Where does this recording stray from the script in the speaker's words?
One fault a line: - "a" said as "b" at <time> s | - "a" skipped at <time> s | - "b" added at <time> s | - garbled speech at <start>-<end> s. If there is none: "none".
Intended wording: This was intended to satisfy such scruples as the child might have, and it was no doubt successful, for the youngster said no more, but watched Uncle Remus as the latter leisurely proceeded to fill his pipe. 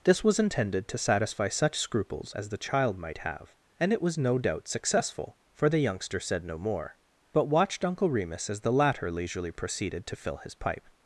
none